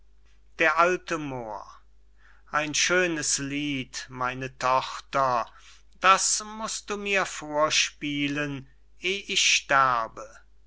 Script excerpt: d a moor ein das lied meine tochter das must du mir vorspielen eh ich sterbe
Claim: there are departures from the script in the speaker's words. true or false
true